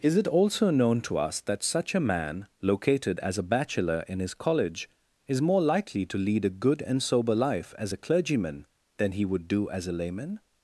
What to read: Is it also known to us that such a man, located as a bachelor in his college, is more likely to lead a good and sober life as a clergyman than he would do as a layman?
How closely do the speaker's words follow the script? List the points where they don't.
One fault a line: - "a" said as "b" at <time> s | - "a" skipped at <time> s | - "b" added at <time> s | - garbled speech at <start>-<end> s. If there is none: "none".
none